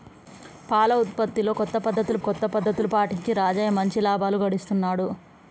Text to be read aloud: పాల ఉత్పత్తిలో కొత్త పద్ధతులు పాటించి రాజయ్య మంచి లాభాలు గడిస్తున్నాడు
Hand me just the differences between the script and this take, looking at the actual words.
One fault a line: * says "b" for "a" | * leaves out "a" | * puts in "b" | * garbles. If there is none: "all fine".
* puts in "కొత్త పద్ధతులు"